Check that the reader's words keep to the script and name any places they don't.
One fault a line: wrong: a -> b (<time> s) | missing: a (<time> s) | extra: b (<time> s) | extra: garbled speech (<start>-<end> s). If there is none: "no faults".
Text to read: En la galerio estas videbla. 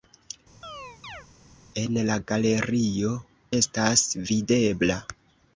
no faults